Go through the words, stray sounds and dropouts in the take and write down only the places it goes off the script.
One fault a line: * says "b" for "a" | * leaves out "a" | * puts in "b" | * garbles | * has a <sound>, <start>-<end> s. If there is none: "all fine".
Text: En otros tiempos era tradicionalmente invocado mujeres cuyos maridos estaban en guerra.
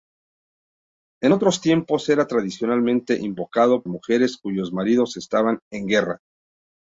all fine